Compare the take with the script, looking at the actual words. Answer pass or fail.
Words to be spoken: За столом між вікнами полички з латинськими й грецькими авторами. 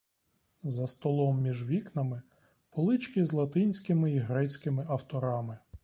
pass